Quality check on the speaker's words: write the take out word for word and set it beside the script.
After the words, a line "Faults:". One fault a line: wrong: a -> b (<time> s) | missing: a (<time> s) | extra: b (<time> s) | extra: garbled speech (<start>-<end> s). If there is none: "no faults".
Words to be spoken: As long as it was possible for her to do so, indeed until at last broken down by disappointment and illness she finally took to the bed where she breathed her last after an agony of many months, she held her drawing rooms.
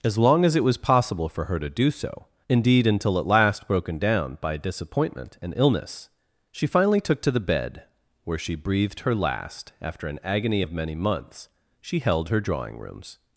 As long as it was possible for her to do so, indeed until at last broken down by disappointment and illness she finally took to the bed where she breathed her last after an agony of many months, she held her drawing rooms.
Faults:
no faults